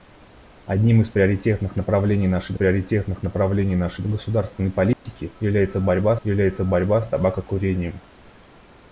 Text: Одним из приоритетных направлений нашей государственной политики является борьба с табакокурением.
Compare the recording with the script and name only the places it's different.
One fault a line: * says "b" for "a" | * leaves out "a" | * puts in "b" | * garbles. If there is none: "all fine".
* puts in "приоритетных направлений нашей"
* puts in "является борьба"